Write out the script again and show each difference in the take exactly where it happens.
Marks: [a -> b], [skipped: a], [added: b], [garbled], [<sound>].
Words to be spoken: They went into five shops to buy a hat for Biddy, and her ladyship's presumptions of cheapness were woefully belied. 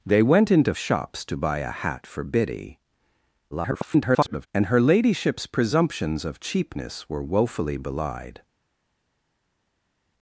They went into [skipped: five] shops to buy a hat for Biddy, [garbled] and her ladyship's presumptions of cheapness were woefully belied.